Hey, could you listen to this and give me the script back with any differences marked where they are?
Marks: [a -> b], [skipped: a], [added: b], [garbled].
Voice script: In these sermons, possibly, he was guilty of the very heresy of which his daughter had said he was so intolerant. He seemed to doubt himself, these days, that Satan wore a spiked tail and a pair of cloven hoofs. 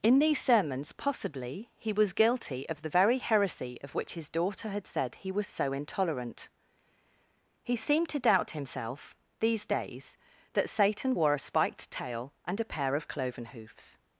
In these sermons, possibly, he was guilty of the very heresy of which his daughter had said he was so intolerant. He seemed to doubt himself, these days, that Satan wore a spiked tail and a pair of cloven hoofs.